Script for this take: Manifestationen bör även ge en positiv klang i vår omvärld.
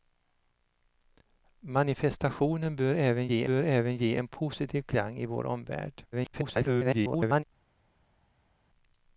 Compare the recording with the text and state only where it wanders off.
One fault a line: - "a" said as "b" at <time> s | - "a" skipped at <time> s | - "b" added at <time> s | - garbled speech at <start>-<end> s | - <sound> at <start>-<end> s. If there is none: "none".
- "bör även ge" added at 3.4 s
- garbled speech at 6.1-7.4 s